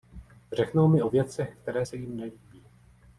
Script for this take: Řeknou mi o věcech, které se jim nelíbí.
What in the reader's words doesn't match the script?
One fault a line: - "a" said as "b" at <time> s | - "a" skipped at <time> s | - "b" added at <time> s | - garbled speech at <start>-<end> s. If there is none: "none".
none